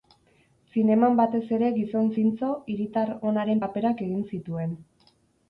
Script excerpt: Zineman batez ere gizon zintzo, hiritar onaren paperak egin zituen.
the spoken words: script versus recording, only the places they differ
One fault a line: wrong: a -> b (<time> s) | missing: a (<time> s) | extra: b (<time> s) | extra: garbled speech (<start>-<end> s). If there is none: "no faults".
no faults